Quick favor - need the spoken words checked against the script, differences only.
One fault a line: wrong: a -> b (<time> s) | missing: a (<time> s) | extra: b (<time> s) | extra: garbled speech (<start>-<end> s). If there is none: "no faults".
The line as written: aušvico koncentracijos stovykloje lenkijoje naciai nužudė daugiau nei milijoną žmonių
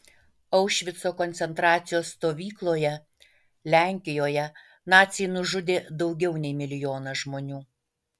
no faults